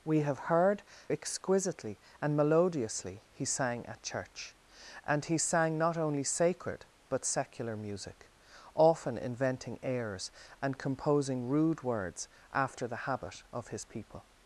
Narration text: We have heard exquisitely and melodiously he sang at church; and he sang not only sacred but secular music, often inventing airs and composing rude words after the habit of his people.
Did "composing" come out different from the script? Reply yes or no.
no